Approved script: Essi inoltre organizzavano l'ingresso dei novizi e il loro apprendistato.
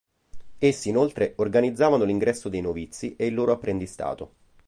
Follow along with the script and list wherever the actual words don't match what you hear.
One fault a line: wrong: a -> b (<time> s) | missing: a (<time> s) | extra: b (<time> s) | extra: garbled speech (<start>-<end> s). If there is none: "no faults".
no faults